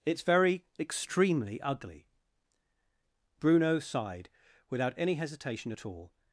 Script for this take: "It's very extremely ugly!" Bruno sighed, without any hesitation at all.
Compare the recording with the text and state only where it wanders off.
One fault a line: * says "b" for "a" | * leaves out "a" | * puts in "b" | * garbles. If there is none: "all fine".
all fine